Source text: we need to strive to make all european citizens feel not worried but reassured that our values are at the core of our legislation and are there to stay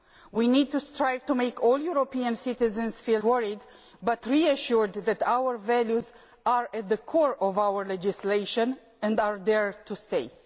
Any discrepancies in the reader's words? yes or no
yes